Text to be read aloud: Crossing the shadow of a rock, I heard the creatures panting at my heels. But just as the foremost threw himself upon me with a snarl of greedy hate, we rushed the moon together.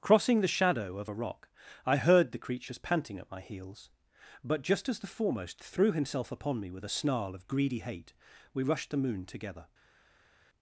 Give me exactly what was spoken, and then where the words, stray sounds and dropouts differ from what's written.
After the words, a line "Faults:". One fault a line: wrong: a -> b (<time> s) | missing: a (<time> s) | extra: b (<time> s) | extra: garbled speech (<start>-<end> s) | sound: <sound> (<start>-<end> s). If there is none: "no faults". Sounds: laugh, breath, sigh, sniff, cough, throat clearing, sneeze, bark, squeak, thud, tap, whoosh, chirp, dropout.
Crossing the shadow of a rock, I heard the creatures panting at my heels. But just as the foremost threw himself upon me with a snarl of greedy hate, we rushed the moon together.
Faults:
no faults